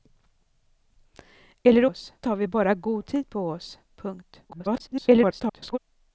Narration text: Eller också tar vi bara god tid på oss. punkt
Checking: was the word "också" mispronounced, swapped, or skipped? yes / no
yes